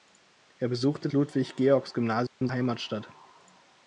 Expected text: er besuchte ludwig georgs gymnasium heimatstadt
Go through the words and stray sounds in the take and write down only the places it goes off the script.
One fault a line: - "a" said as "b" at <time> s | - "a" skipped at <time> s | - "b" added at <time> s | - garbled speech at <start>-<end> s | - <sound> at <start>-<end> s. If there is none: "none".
- dropout at 2.3-2.4 s